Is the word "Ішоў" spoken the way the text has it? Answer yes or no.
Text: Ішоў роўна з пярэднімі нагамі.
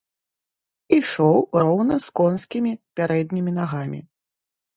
yes